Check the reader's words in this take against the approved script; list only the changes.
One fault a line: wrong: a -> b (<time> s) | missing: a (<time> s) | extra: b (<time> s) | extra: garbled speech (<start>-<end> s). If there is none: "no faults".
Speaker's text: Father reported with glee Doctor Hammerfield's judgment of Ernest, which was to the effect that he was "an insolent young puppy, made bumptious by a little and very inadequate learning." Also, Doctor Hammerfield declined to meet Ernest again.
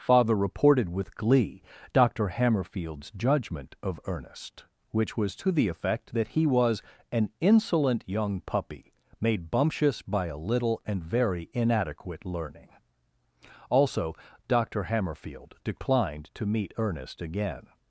no faults